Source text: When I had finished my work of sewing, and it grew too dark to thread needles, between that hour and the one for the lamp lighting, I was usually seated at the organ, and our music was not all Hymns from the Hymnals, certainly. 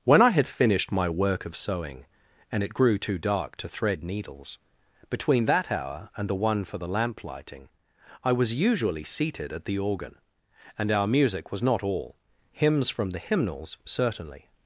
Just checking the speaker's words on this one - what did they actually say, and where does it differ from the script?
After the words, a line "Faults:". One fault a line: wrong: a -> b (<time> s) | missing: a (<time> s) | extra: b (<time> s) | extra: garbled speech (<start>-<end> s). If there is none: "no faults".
When I had finished my work of sewing, and it grew too dark to thread needles, between that hour and the one for the lamp lighting, I was usually seated at the organ, and our music was not all Hymns from the Hymnals, certainly.
Faults:
no faults